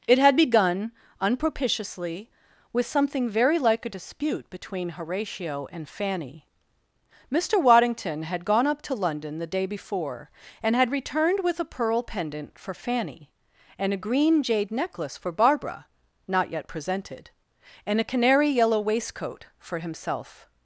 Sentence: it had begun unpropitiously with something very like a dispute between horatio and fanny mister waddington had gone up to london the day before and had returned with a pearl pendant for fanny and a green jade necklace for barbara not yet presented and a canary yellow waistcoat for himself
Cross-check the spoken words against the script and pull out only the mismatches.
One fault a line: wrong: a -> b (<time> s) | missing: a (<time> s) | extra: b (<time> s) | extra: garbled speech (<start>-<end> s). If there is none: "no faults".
no faults